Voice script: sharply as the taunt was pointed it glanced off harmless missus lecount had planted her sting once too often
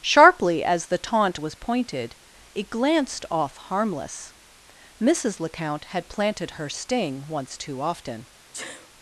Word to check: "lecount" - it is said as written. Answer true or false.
true